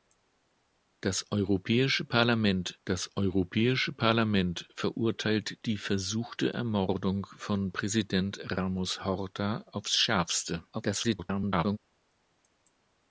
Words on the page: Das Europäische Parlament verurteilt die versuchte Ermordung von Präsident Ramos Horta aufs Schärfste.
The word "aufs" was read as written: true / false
true